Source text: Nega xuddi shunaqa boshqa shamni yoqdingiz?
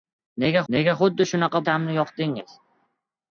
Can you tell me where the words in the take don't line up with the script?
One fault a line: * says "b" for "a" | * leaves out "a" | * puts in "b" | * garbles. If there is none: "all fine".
* puts in "nega"
* leaves out "boshqa"